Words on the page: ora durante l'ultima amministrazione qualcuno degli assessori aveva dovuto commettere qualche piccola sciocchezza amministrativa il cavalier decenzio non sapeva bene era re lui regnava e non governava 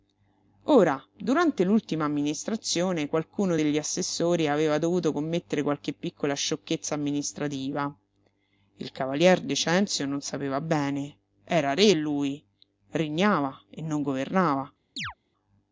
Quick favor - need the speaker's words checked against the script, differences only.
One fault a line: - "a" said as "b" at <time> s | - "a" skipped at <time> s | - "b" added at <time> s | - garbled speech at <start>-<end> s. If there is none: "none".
none